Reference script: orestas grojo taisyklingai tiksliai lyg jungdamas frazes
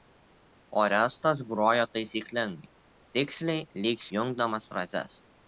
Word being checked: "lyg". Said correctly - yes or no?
yes